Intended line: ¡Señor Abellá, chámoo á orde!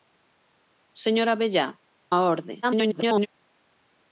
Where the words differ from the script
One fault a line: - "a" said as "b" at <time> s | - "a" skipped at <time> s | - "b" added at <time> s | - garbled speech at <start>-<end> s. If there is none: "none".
- "chámoo" skipped at 1.7 s
- garbled speech at 2.6-3.3 s